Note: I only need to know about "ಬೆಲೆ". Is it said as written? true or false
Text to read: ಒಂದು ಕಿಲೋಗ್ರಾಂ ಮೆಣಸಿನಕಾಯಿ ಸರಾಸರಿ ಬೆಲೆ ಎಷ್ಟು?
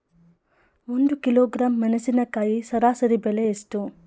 true